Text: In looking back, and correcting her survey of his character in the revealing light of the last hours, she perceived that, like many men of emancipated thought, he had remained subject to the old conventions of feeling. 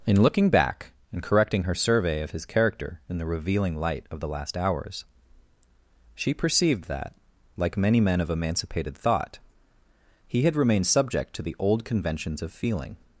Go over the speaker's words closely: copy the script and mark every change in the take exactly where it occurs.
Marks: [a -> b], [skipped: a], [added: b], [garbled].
In looking back, and correcting her survey of his character in the revealing light of the last hours, she perceived that, like many men of emancipated thought, he had remained subject to the old conventions of feeling.